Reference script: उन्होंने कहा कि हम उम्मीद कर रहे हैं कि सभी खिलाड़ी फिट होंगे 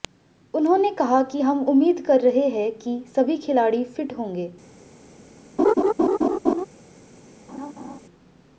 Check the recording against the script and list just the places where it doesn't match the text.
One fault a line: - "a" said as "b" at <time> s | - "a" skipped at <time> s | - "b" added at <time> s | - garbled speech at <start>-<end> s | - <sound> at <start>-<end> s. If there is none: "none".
- laugh at 5.6-6.7 s
- laugh at 7.5-8.0 s